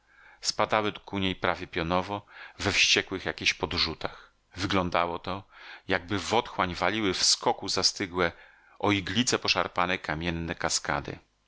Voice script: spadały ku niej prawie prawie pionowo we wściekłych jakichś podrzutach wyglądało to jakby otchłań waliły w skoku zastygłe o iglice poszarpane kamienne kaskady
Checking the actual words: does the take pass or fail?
fail